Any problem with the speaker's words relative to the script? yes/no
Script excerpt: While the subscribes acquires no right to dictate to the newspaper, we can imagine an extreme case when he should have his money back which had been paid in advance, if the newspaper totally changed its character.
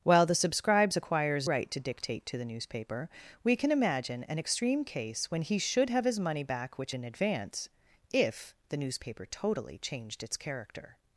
yes